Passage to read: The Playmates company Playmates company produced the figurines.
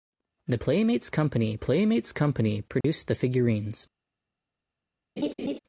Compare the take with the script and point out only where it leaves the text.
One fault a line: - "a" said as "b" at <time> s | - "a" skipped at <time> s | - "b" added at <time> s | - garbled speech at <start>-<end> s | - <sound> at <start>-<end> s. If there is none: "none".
- dropout at 2.8-2.8 s
- laugh at 5.2-5.6 s